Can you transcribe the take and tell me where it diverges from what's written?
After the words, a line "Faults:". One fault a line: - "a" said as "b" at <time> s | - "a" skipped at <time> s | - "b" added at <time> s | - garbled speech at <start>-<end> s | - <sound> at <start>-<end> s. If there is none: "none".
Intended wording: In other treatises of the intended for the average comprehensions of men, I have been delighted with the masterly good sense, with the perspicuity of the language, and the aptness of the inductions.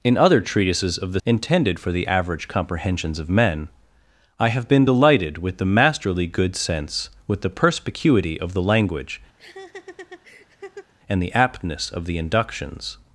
In other treatises of the intended for the average comprehensions of men, I have been delighted with the masterly good sense, with the perspicuity of the language, and the aptness of the inductions.
Faults:
- laugh at 9.4-10.9 s